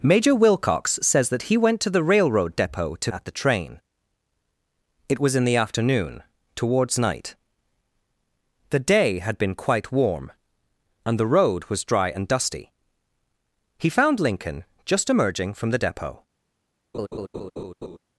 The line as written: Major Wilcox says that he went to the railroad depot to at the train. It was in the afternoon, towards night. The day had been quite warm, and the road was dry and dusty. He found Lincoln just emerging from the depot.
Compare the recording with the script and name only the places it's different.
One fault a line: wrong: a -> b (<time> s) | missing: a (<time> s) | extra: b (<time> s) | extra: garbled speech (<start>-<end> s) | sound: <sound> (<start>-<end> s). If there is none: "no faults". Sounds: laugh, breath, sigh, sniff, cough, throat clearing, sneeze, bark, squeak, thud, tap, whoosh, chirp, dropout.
sound: laugh (16.9-18.0 s)